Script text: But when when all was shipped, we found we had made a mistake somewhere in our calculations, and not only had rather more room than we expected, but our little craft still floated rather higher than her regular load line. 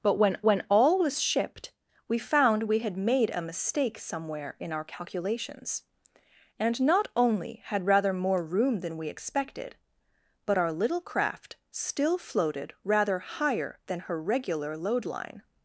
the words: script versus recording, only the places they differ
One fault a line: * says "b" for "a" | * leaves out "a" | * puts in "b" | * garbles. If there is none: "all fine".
all fine